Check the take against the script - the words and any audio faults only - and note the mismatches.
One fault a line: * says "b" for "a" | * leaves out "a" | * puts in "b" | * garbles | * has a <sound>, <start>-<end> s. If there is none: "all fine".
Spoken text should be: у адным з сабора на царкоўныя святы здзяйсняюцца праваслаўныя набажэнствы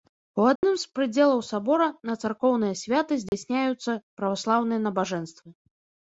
* has a dropout, 0.6-0.6 s
* puts in "прыдзелаў"
* has a dropout, 3.3-3.3 s